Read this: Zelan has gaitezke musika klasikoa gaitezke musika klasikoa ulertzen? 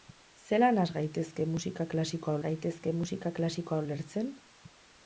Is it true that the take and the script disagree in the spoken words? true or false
false